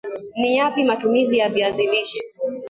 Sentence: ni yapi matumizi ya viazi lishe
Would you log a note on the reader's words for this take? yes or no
no